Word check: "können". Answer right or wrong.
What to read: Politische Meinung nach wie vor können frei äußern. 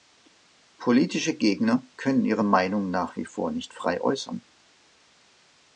wrong